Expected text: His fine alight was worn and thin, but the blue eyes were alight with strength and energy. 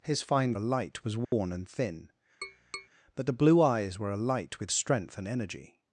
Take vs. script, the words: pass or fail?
pass